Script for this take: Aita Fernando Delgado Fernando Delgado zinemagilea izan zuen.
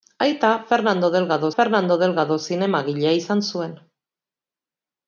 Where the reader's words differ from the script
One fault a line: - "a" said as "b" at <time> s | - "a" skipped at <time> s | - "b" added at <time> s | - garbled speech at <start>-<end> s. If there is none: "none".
none